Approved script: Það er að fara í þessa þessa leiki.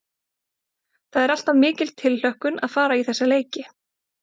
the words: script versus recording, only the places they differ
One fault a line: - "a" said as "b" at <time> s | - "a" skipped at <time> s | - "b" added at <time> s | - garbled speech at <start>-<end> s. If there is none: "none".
- "alltaf mikil tilhlökkun" added at 1.4 s
- "þessa" skipped at 3.3 s